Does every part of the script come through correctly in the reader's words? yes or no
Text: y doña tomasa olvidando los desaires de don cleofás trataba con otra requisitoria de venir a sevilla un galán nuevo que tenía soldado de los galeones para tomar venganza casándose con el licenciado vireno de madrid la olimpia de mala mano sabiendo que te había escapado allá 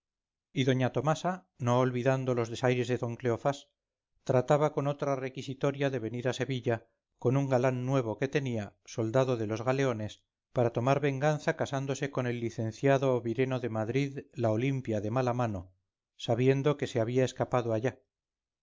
no